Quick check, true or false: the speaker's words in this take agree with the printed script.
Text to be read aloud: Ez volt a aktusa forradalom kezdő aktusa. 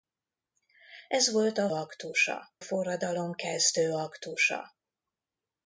true